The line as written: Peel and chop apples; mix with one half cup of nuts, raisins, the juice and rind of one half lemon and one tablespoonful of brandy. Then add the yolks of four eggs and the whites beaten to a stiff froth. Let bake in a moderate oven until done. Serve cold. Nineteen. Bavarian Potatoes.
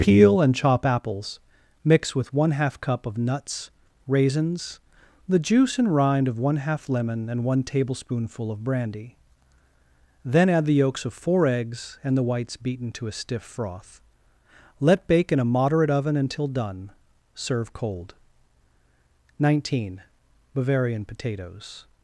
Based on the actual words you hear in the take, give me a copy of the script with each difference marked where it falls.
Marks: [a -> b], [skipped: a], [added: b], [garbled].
Peel and chop apples; mix with one half cup of nuts, raisins, the juice and rind of one half lemon and one tablespoonful of brandy. Then add the yolks of four eggs and the whites beaten to a stiff froth. Let bake in a moderate oven until done. Serve cold. Nineteen. Bavarian Potatoes.